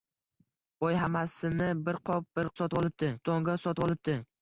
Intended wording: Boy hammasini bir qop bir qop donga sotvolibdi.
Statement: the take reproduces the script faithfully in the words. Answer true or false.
false